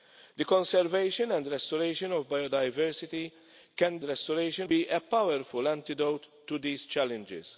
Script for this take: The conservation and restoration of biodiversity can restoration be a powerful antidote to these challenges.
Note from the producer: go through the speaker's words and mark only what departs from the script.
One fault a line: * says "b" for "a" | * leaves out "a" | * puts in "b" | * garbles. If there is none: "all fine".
all fine